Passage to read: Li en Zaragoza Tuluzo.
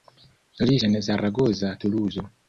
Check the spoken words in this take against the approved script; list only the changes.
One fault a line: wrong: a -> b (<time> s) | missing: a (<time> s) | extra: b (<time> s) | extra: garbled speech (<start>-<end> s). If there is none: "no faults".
no faults